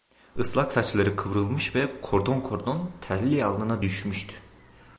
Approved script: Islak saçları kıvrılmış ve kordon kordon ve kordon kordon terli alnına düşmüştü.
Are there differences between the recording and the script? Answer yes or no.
yes